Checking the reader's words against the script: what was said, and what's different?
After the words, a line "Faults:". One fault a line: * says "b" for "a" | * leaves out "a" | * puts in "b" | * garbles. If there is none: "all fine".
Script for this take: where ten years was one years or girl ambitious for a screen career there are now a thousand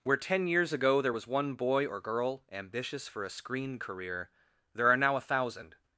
where ten years ago there was one boy or girl ambitious for a screen career there are now a thousand
Faults:
* puts in "ago there"
* says "boy" for "years"